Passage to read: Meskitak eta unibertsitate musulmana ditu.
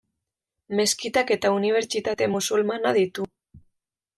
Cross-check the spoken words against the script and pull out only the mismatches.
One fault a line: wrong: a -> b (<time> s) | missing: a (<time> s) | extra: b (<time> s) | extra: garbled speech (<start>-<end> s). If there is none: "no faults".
no faults